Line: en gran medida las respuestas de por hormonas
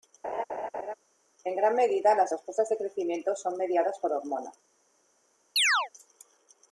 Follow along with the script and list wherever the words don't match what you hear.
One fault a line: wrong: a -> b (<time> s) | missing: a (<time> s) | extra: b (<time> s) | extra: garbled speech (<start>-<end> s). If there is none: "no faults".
extra: crecimiento son mediadas (2.8 s)